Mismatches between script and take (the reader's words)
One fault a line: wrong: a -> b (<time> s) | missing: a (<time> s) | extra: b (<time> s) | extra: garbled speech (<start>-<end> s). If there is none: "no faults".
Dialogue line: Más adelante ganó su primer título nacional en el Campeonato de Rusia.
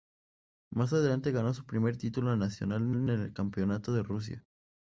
extra: en (3.0 s)